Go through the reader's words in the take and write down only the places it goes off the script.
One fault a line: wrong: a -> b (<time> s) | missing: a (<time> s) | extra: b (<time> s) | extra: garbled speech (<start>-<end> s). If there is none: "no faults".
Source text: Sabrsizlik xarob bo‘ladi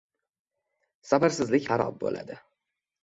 no faults